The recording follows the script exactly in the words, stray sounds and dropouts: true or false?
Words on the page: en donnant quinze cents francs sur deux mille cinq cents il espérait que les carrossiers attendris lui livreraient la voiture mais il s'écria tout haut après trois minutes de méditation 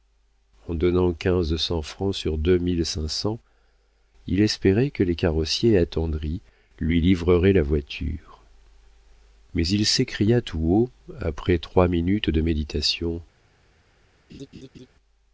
false